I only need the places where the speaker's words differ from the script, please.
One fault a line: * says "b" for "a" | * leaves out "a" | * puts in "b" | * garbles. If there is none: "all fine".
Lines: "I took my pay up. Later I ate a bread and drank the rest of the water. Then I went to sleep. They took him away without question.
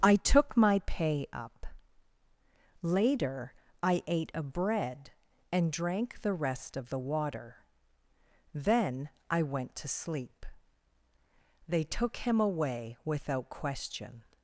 all fine